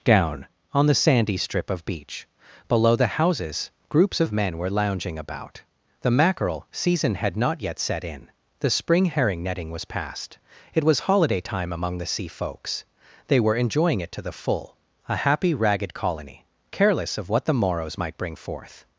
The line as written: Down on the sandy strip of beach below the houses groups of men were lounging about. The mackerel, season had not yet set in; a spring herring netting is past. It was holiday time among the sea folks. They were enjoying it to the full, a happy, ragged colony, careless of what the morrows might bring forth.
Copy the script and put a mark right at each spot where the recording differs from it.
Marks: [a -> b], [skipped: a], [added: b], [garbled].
Down on the sandy strip of beach below the houses groups of men were lounging about. The mackerel, season had not yet set in; [a -> the] spring herring netting [is -> was] past. It was holiday time among the sea folks. They were enjoying it to the full, a happy, ragged colony, careless of what the morrows might bring forth.